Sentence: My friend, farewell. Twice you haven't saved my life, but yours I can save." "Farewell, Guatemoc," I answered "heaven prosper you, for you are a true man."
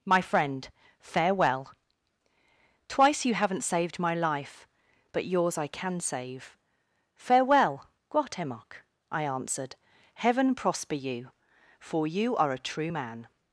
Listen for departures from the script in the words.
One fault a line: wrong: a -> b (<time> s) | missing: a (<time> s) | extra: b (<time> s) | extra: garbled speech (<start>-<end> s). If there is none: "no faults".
no faults